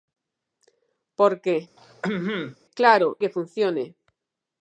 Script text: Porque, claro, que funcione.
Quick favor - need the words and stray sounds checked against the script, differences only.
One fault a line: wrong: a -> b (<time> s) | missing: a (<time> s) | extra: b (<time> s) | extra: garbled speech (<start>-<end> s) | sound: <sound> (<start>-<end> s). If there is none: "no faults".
sound: throat clearing (1.8-2.6 s)